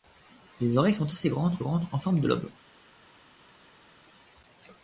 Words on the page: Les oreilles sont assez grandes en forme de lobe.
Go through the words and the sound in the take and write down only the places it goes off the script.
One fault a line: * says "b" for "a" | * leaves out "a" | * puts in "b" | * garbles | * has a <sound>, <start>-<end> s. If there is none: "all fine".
* puts in "grandes"